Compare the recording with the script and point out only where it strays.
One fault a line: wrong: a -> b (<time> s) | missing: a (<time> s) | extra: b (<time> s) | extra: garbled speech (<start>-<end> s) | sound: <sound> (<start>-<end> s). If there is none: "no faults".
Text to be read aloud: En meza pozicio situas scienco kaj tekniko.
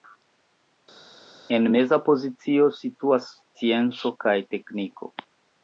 no faults